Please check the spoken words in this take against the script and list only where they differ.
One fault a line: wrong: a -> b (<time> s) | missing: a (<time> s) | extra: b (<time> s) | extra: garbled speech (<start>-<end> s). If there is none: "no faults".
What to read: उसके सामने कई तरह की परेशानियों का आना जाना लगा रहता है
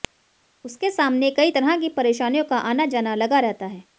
no faults